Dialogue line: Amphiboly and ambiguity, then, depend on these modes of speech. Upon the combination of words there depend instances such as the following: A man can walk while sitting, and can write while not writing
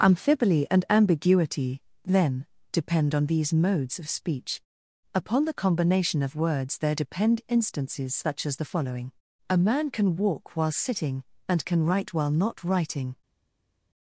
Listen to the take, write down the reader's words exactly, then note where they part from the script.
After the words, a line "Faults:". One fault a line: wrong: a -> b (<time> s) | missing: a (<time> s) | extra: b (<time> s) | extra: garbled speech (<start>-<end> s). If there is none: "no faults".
Amphiboly and ambiguity, then, depend on these modes of speech. Upon the combination of words there depend instances such as the following: A man can walk while sitting, and can write while not writing
Faults:
no faults